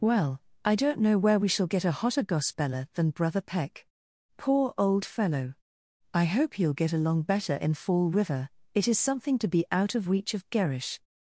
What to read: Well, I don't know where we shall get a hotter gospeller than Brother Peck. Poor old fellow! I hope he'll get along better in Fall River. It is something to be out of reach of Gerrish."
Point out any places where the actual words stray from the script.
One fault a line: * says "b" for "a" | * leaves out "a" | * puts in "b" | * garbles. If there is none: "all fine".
all fine